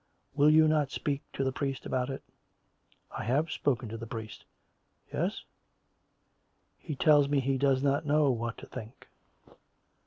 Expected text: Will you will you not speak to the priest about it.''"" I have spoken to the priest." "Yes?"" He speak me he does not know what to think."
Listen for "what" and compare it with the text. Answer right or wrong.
right